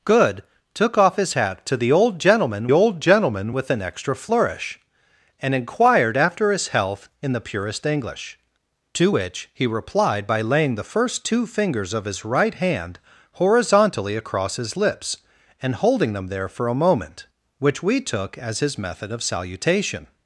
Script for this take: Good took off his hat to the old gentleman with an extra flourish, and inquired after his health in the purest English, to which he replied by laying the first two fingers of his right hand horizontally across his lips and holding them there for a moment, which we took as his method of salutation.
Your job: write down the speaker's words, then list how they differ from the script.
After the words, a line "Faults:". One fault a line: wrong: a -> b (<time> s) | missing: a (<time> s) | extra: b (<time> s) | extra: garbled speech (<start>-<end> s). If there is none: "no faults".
Good took off his hat to the old gentleman old gentleman with an extra flourish, and inquired after his health in the purest English, to which he replied by laying the first two fingers of his right hand horizontally across his lips and holding them there for a moment, which we took as his method of salutation.
Faults:
extra: old gentleman (2.7 s)